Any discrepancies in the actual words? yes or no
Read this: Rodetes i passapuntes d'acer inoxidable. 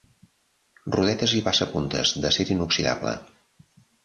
no